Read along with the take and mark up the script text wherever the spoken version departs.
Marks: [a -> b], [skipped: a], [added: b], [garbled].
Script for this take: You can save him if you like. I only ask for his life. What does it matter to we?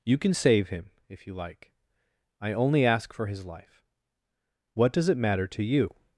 You can save him if you like. I only ask for his life. What does it matter to [we? -> you]